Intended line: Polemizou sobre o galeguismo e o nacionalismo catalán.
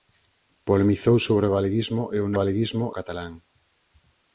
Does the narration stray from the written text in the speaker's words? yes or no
yes